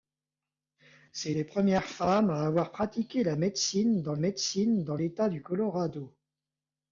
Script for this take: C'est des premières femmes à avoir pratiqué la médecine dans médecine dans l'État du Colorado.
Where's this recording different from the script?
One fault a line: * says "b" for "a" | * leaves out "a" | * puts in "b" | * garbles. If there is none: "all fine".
all fine